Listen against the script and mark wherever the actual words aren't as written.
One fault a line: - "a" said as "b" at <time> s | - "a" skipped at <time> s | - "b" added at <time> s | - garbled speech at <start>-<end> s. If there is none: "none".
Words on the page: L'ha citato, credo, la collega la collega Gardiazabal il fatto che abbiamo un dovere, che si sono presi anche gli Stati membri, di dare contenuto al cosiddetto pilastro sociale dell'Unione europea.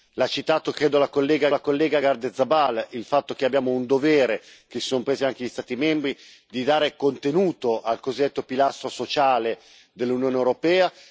none